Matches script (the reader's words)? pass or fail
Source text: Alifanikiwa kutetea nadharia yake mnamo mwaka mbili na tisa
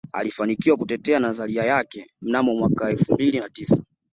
fail